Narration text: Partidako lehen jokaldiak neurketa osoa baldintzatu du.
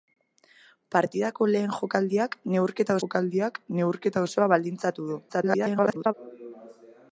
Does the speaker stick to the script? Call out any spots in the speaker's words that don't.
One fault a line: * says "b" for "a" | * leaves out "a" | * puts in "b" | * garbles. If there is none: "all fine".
* puts in "jokaldiak neurketa"
* garbles